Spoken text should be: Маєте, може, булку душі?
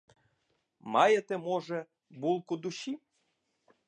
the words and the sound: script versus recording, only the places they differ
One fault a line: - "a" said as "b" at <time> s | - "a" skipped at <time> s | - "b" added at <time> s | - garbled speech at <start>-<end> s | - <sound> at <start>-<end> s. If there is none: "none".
none